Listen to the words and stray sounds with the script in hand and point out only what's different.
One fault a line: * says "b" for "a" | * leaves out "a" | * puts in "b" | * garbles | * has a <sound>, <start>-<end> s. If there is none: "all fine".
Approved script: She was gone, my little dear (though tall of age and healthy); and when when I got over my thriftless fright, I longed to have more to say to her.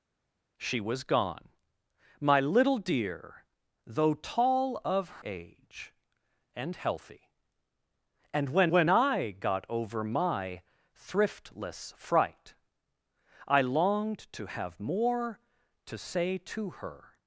all fine